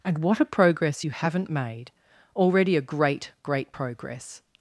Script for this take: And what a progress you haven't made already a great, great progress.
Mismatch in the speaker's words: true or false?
false